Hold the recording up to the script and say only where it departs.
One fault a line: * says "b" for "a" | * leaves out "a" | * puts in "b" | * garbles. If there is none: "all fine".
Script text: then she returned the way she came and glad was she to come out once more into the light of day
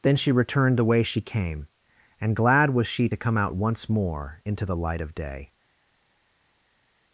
all fine